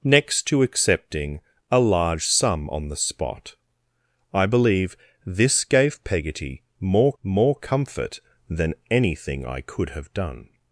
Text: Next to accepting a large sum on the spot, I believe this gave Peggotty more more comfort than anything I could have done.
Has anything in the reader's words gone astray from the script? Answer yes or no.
no